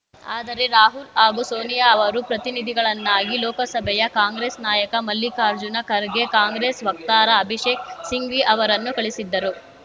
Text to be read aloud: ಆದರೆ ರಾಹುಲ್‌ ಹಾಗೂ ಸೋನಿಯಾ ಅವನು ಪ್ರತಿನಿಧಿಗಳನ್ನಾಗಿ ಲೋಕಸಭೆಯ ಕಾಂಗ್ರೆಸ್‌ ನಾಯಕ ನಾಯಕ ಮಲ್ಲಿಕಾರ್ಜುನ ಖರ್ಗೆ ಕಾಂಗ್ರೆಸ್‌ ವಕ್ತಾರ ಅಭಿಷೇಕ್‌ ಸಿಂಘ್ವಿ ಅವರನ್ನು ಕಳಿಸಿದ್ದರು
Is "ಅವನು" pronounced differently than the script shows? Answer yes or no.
yes